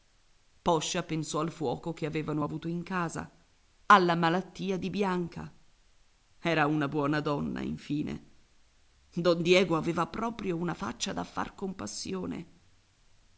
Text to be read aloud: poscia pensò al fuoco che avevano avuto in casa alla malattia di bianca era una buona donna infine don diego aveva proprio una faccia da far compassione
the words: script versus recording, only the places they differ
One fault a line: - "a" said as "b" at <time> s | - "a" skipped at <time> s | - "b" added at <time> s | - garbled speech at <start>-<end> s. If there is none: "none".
none